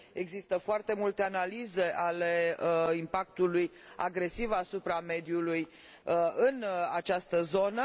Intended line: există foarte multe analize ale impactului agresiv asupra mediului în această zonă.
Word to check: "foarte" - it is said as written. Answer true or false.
true